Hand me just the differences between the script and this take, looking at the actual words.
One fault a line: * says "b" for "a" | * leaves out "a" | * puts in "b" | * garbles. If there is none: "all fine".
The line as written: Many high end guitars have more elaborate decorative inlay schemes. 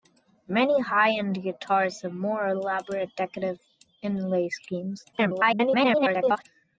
* garbles